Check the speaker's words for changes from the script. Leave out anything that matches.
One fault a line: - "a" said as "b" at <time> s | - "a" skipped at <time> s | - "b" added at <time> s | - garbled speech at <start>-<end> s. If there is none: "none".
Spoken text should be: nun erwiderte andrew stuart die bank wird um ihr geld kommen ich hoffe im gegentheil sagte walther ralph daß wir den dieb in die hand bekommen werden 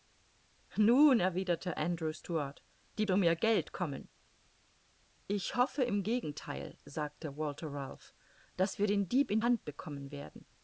- "bank wird" skipped at 3.0 s
- "die" skipped at 9.4 s